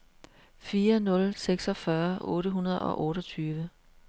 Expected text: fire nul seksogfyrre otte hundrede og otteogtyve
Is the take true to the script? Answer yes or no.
yes